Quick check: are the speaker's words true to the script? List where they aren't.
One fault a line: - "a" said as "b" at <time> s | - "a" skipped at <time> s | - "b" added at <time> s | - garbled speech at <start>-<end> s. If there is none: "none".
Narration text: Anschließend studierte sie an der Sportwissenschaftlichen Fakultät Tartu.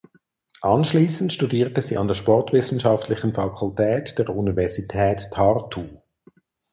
- "der Universität" added at 4.2 s